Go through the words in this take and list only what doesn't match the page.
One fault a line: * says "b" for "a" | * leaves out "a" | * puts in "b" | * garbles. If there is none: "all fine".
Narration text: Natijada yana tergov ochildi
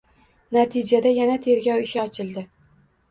* puts in "ishi"